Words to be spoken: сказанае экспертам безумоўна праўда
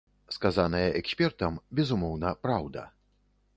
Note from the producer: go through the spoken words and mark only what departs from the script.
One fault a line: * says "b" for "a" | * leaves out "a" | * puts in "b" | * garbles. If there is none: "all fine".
all fine